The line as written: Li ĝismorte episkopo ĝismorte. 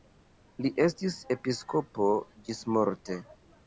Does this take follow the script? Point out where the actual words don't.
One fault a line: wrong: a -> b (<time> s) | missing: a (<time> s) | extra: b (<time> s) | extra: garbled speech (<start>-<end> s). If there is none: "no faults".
wrong: ĝismorte -> estis (0.8 s)